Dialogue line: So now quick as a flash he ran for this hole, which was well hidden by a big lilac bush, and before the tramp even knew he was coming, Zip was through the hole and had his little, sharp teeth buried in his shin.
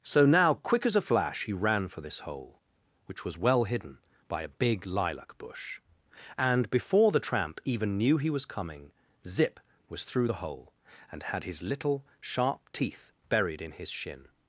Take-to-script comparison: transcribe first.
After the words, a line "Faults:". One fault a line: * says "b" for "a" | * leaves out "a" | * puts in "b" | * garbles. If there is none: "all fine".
So now quick as a flash he ran for this hole, which was well hidden by a big lilac bush, and before the tramp even knew he was coming, Zip was through the hole and had his little, sharp teeth buried in his shin.
Faults:
all fine